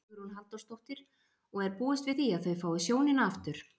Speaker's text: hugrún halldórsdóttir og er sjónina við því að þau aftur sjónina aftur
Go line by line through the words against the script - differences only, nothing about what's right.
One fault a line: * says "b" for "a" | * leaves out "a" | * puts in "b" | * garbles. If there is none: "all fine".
* says "búist" for "sjónina"
* says "fái" for "aftur"